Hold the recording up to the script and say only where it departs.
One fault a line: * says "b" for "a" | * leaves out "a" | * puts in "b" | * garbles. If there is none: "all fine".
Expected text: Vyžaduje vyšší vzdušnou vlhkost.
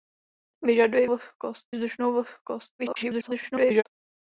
* says "vlhkost" for "vyšší"
* garbles